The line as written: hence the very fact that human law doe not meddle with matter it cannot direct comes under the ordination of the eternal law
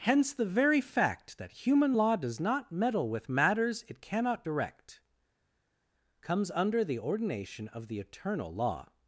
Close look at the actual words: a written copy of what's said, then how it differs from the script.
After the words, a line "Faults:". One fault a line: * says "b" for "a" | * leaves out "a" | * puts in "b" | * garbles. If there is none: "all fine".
hence the very fact that human law does not meddle with matters it cannot direct comes under the ordination of the eternal law
Faults:
* says "does" for "doe"
* says "matters" for "matter"